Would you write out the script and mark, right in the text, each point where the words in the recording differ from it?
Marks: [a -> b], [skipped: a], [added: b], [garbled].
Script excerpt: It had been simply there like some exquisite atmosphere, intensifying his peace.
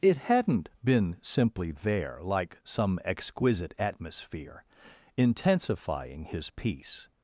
It [had -> hadn't] been simply there like some exquisite atmosphere, intensifying his peace.